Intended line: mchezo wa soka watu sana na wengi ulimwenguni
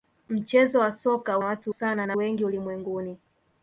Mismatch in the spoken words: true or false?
false